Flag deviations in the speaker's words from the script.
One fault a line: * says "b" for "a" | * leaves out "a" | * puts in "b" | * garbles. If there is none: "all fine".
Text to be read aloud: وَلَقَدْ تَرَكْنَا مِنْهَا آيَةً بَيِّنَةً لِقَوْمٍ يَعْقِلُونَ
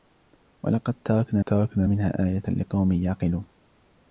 * puts in "تَرَكْنَا"
* leaves out "بَيِّنَةً"